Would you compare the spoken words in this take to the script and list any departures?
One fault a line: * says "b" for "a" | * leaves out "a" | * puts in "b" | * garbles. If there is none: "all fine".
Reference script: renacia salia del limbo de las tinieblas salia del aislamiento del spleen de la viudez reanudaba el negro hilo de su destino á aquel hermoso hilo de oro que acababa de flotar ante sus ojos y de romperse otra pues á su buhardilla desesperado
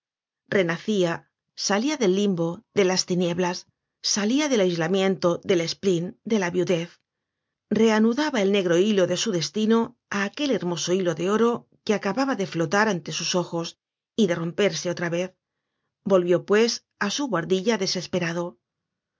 * puts in "vez volvió"